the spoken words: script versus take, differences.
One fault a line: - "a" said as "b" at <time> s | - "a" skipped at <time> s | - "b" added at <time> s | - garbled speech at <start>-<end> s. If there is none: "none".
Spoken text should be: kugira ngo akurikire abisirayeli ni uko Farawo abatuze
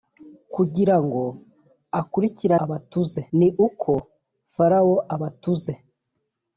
- "abisirayeli" said as "abatuze" at 2.6 s